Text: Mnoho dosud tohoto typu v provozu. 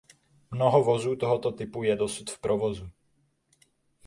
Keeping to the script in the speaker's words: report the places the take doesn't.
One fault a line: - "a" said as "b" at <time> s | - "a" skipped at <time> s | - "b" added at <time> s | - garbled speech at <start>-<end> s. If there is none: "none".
- "dosud" said as "vozů" at 0.8 s
- "je dosud" added at 1.8 s